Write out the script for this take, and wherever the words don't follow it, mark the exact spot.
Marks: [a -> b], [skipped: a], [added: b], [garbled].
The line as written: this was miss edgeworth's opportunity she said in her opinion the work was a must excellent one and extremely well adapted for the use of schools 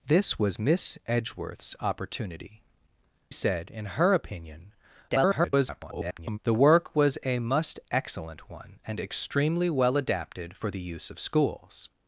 this was miss edgeworth's opportunity [skipped: she] said in her opinion [garbled] the work was a must excellent one and extremely well adapted for the use of schools